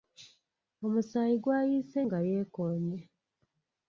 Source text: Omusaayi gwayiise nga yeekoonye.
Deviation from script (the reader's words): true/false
false